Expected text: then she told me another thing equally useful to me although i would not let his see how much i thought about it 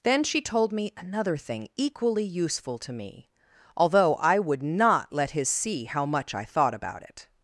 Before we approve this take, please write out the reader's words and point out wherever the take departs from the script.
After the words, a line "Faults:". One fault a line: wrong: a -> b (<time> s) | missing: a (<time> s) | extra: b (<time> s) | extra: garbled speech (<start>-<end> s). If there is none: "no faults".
then she told me another thing equally useful to me although i would not let his see how much i thought about it
Faults:
no faults